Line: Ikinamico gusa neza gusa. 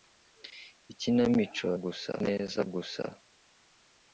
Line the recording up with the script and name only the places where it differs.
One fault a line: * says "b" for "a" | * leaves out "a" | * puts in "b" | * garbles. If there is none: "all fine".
all fine